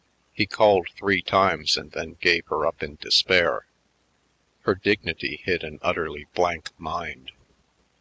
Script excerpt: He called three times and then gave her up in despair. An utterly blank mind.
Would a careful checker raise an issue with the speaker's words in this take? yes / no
yes